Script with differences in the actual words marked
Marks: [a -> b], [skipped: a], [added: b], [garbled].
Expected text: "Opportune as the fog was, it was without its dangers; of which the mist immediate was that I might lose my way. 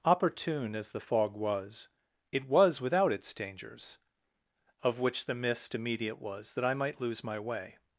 "Opportune as the fog was, it was without its dangers; of which the mist immediate was that I might lose my way.